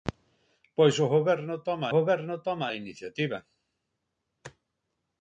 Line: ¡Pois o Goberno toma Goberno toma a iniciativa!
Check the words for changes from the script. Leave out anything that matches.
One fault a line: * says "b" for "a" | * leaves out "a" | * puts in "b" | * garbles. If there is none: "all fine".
all fine